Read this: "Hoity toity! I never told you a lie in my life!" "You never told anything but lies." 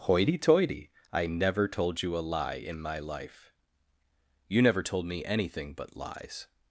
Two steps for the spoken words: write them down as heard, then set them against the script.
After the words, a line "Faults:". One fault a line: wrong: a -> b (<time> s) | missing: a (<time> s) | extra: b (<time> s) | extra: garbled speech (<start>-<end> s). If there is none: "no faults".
"Hoity toity! I never told you a lie in my life!" "You never told me anything but lies."
Faults:
extra: me (5.0 s)